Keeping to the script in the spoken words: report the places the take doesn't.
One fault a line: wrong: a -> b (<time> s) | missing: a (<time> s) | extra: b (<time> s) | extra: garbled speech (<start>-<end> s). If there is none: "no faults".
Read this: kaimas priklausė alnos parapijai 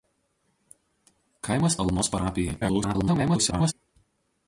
missing: priklausė (1.8 s)
extra: garbled speech (2.6-3.7 s)